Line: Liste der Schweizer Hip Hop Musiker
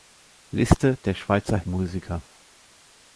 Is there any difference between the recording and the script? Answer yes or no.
yes